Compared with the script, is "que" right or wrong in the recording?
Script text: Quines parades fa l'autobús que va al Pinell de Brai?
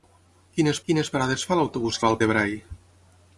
wrong